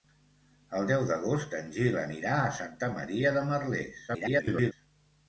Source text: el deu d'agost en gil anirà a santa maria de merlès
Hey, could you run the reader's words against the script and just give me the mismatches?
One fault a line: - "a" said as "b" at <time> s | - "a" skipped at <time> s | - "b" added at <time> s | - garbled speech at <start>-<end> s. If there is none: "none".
- garbled speech at 4.1-4.7 s